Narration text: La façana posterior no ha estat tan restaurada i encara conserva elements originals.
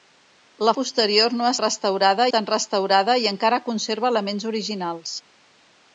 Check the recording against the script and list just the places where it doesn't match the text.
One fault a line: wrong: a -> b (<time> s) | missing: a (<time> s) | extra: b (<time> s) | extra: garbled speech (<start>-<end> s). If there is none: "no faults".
missing: façana (0.7 s)
wrong: estat -> restaurada (1.6 s)